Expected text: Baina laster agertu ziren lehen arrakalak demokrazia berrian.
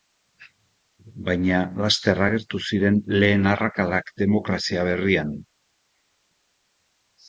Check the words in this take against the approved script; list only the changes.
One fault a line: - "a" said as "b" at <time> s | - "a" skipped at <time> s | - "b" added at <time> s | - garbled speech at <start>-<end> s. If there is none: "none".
none